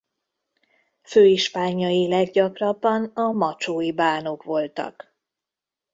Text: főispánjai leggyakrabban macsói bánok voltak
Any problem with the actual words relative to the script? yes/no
yes